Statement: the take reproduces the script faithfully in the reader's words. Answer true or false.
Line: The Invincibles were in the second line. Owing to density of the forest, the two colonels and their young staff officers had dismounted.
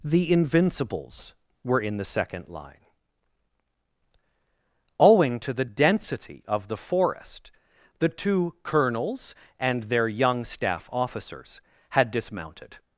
false